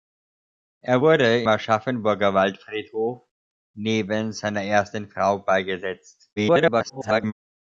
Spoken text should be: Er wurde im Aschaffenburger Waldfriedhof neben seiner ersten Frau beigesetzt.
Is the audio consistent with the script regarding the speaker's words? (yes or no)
no